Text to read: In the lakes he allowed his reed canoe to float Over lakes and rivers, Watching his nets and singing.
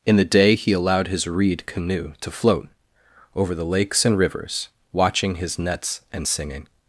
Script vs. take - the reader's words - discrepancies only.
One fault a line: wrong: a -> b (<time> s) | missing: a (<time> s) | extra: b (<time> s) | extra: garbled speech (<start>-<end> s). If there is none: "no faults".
wrong: lakes -> day (0.2 s)
extra: the (3.5 s)